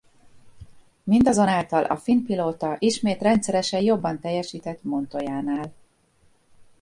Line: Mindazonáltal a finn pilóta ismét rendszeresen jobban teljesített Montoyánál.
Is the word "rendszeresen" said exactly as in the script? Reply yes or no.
yes